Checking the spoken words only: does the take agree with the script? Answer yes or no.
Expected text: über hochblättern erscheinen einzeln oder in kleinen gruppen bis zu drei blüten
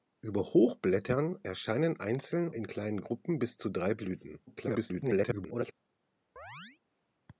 no